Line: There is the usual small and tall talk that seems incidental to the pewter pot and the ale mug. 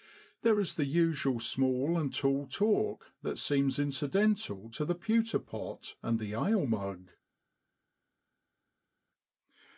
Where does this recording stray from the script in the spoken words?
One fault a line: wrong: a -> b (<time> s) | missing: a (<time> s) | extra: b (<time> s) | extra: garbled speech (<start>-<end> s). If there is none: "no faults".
no faults